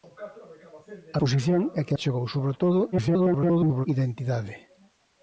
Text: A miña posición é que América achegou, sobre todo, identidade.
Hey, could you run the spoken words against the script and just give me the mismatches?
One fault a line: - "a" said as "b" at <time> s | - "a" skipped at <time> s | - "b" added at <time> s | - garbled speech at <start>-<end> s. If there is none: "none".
- "miña" skipped at 1.2 s
- "América" skipped at 1.9 s
- garbled speech at 2.9-3.9 s